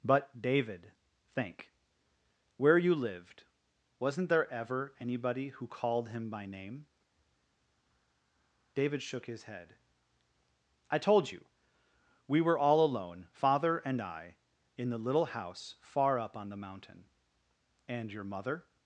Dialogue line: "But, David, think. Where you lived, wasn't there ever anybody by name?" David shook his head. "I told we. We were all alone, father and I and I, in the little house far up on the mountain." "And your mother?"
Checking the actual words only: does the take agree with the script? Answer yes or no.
no